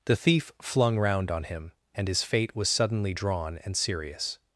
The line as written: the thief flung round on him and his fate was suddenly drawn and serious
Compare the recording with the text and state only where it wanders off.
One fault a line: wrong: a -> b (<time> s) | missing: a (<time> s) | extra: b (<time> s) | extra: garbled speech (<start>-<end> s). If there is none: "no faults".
no faults